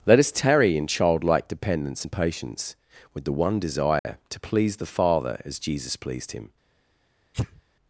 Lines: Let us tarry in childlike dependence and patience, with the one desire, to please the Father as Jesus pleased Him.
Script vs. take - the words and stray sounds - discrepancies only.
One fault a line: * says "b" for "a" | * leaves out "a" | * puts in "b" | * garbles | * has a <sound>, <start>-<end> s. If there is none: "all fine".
* has a dropout, 4.0-4.1 s
* has a sneeze, 7.3-7.6 s